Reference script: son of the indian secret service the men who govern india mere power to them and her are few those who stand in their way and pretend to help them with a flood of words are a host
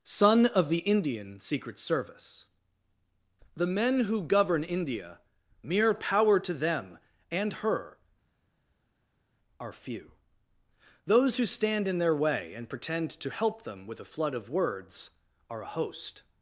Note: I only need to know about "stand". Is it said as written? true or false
true